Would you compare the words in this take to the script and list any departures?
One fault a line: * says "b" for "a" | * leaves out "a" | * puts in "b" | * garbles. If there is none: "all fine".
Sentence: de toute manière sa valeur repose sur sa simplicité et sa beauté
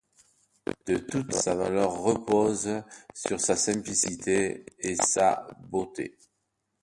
* leaves out "manière"